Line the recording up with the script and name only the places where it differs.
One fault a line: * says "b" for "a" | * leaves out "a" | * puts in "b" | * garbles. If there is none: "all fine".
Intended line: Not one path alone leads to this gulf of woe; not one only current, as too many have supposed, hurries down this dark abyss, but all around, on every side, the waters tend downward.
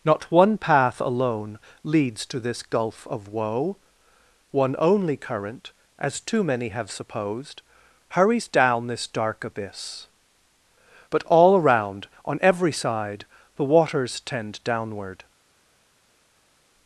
* leaves out "not"